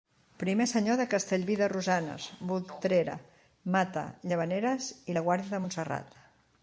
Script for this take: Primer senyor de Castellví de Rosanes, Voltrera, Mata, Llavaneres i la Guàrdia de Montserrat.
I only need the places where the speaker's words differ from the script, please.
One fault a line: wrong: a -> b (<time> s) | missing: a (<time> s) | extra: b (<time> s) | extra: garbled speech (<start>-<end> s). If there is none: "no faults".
no faults